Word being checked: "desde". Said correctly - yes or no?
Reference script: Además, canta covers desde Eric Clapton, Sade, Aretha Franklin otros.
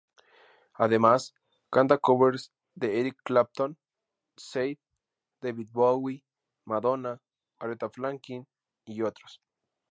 no